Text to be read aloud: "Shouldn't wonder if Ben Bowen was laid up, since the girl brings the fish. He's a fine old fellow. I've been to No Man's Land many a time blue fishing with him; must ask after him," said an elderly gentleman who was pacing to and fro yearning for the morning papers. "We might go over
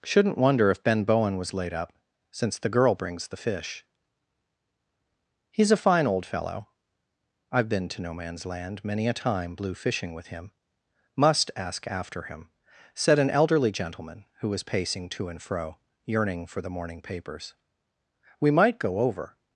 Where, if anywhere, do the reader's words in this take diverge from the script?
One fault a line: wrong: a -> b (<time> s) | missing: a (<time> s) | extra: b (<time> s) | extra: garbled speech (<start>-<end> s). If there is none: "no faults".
no faults